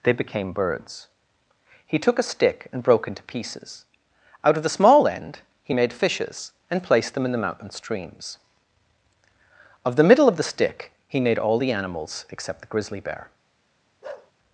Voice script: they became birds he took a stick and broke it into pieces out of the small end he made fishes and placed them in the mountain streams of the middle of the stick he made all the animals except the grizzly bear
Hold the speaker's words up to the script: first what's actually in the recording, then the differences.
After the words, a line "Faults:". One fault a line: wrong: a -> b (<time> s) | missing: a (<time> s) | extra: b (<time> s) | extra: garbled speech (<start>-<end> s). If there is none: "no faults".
they became birds he took a stick and broke into pieces out of the small end he made fishes and placed them in the mountain streams of the middle of the stick he made all the animals except the grizzly bear
Faults:
missing: it (3.1 s)